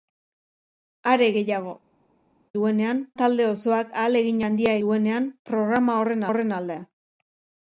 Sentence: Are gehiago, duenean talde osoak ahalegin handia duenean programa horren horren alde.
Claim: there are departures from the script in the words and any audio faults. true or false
false